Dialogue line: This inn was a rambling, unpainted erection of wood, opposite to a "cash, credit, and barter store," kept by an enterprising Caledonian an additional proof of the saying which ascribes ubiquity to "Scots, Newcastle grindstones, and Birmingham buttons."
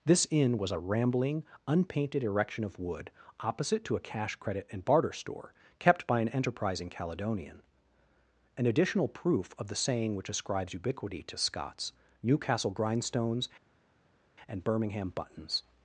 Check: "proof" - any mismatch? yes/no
no